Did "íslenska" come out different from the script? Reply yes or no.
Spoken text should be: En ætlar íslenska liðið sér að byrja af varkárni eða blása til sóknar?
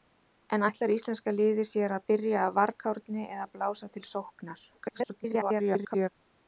no